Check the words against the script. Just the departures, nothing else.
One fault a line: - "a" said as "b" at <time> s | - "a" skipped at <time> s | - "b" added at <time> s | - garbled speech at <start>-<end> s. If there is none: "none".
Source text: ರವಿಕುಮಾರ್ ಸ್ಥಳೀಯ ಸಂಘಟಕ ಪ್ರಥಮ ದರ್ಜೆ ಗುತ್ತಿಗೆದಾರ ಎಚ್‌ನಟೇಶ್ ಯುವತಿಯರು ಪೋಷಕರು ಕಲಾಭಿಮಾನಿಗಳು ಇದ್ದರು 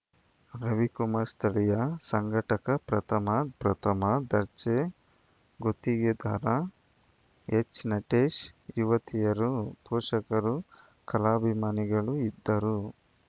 - "ಪ್ರಥಮ" added at 3.6 s